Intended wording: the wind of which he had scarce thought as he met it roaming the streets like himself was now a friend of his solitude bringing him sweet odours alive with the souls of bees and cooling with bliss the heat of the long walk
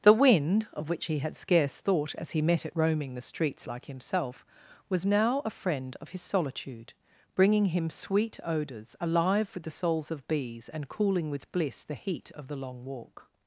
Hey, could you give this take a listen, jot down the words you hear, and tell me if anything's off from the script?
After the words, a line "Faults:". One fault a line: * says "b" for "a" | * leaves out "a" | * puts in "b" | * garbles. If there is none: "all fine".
the wind of which he had scarce thought as he met it roaming the streets like himself was now a friend of his solitude bringing him sweet odours alive with the souls of bees and cooling with bliss the heat of the long walk
Faults:
all fine